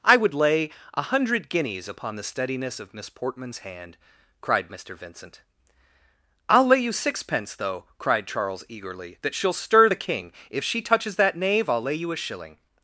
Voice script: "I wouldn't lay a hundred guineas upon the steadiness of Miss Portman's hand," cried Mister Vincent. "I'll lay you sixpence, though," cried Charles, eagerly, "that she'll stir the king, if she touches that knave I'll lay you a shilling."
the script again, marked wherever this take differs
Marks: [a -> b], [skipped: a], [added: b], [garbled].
"I [wouldn't -> would] lay a hundred guineas upon the steadiness of Miss Portman's hand," cried Mister Vincent. "I'll lay you sixpence, though," cried Charles, eagerly, "that she'll stir the king, if she touches that knave I'll lay you a shilling."